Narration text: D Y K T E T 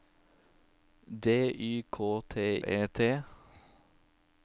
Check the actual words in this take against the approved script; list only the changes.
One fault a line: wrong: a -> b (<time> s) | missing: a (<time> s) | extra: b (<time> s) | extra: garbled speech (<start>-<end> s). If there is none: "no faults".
no faults